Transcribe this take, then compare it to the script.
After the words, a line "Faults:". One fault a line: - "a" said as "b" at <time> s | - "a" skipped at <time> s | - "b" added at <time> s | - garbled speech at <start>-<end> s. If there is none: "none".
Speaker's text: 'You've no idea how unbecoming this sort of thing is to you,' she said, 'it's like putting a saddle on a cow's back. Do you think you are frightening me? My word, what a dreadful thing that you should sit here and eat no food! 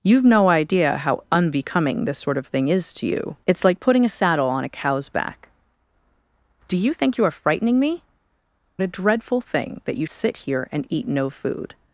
'You've no idea how unbecoming this sort of thing is to you,' 'it's like putting a saddle on a cow's back. Do you think you are frightening me? A dreadful thing that you sit here and eat no food!
Faults:
- "she said" skipped at 3.4 s
- "My word what" skipped at 8.0 s
- "should" skipped at 10.1 s